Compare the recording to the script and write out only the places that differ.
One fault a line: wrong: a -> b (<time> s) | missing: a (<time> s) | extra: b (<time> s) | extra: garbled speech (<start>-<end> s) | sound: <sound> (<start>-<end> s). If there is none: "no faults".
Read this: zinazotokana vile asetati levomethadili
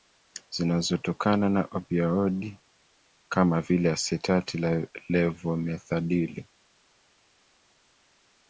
extra: na opioidi kama (1.5 s)